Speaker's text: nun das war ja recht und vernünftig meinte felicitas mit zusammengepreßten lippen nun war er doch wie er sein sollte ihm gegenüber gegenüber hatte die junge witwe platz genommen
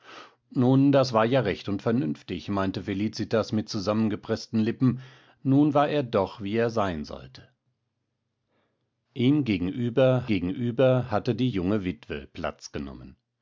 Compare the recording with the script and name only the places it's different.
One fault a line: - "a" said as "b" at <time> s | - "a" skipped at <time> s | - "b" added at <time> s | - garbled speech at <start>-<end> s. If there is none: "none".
none